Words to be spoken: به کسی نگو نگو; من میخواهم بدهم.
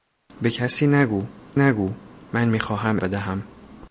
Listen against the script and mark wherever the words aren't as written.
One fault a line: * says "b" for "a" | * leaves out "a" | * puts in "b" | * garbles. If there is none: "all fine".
all fine